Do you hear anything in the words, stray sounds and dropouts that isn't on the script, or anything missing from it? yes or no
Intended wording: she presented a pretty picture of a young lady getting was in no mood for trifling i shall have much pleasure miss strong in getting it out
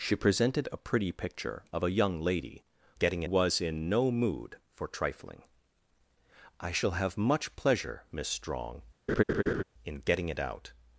yes